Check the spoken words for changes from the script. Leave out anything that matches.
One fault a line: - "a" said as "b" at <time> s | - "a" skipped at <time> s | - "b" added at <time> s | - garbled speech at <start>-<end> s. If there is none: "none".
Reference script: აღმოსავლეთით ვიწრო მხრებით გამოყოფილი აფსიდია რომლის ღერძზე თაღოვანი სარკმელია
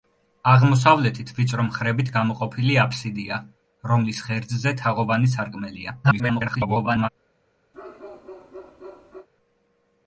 - garbled speech at 6.0-7.1 s